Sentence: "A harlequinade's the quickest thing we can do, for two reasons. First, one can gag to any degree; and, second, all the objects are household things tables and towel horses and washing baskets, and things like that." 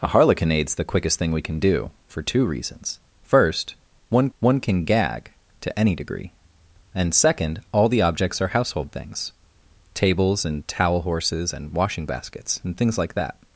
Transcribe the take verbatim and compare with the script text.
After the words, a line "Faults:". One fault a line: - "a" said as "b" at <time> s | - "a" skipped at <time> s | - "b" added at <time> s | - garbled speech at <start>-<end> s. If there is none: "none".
"A harlequinade's the quickest thing we can do, for two reasons. First, one one can gag to any degree; and, second, all the objects are household things tables and towel horses and washing baskets, and things like that."
Faults:
- "one" added at 4.4 s